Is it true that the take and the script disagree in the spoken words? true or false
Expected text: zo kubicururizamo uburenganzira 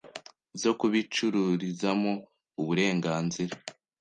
false